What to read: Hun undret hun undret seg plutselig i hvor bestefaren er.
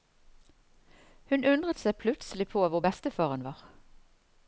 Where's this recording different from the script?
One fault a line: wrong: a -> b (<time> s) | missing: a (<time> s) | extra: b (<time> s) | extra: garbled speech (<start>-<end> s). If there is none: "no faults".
missing: hun undret (1.8 s)
wrong: i -> på (2.5 s)
wrong: er -> var (3.5 s)